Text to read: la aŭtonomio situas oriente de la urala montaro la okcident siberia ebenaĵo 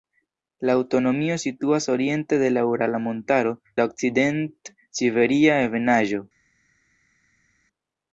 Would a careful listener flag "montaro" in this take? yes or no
no